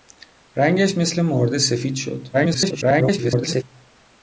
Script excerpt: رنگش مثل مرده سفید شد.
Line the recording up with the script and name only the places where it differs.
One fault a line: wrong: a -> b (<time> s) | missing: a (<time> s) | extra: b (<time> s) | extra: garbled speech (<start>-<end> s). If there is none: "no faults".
extra: garbled speech (2.3-3.6 s)